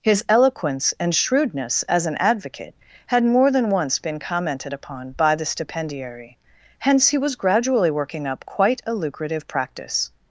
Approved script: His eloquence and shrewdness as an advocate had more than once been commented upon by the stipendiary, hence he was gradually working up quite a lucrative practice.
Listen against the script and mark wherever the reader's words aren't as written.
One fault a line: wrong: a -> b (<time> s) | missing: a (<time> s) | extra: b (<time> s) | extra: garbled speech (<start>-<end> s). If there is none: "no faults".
no faults